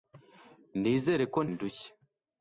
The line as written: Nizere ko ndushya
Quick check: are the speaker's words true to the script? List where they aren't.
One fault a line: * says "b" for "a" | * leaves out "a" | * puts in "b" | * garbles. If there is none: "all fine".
all fine